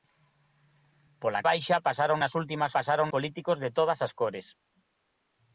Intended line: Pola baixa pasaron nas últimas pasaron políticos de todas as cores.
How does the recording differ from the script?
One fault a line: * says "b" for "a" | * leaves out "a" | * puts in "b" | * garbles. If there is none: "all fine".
all fine